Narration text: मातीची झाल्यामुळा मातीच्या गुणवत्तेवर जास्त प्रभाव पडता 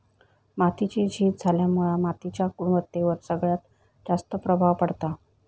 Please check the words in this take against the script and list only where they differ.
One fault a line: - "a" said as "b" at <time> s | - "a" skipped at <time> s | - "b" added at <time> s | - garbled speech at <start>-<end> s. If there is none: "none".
- "झीज" added at 1.1 s
- "सगळ्यात" added at 3.3 s